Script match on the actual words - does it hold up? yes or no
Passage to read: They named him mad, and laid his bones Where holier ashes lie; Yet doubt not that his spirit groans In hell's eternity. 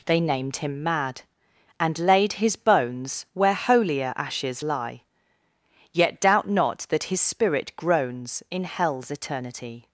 yes